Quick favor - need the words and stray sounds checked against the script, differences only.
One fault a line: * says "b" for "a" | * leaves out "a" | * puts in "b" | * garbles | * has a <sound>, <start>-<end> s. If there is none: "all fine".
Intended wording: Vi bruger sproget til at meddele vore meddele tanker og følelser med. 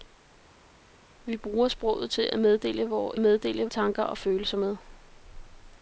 all fine